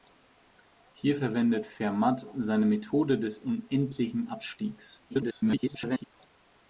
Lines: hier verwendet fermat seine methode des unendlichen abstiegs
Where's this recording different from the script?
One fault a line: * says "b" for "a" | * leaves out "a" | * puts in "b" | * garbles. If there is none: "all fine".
* garbles